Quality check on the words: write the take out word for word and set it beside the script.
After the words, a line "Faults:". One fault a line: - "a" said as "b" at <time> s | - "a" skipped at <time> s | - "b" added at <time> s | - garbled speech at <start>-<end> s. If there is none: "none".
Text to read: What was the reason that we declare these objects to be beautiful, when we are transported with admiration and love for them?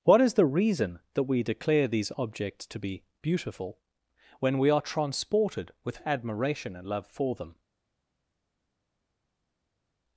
What is the reason that we declare these objects to be beautiful, when we are transported with admiration and love for them?
Faults:
- "was" said as "is" at 0.2 s